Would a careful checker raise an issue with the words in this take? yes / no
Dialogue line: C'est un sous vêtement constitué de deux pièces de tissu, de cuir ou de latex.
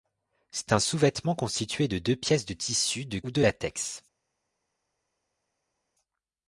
yes